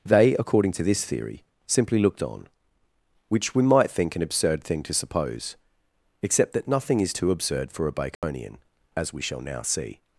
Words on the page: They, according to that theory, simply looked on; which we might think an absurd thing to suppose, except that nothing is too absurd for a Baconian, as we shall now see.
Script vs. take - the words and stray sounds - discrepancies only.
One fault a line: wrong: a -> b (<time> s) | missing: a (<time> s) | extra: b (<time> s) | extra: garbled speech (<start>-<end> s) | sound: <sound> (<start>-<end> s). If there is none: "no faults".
wrong: that -> this (0.8 s)
sound: dropout (8.1-8.2 s)